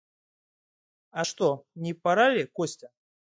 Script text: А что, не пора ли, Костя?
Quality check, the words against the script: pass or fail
pass